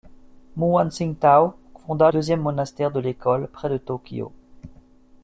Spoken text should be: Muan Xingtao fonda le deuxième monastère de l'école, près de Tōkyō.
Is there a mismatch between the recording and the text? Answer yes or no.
yes